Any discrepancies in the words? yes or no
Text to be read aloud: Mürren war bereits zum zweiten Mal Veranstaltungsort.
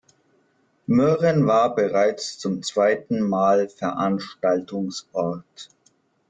no